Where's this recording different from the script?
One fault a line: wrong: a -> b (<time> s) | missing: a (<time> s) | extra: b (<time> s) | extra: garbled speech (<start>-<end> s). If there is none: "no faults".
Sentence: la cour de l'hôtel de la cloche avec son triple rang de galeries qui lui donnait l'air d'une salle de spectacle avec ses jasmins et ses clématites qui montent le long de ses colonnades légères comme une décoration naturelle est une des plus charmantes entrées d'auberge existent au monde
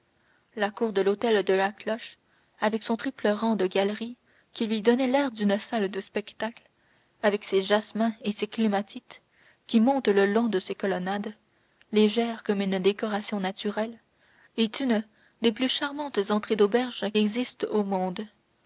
no faults